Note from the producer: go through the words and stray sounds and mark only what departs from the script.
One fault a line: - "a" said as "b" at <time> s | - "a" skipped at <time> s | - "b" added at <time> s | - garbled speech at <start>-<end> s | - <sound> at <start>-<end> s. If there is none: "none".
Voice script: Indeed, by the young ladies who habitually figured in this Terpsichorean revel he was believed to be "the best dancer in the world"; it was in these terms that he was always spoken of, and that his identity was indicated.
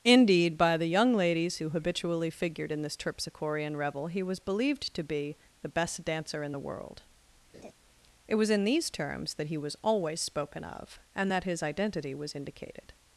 - laugh at 7.5-7.7 s